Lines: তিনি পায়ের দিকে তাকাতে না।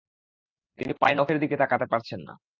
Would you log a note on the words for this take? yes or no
yes